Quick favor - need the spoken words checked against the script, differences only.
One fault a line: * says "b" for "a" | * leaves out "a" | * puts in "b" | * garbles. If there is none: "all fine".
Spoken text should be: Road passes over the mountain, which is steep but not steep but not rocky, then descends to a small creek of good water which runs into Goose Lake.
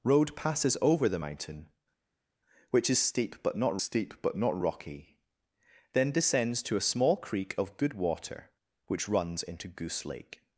all fine